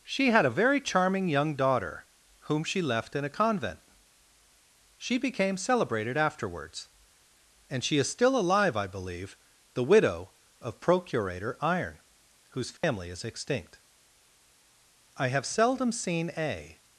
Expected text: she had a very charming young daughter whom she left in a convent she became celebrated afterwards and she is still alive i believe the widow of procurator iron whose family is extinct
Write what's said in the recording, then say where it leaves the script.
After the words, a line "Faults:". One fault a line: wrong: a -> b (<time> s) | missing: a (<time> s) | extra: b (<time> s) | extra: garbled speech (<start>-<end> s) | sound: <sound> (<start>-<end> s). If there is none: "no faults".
she had a very charming young daughter whom she left in a convent she became celebrated afterwards and she is still alive i believe the widow of procurator iron whose family is extinct i have seldom seen a
Faults:
sound: dropout (12.8-12.8 s)
extra: i have seldom seen a (15.2 s)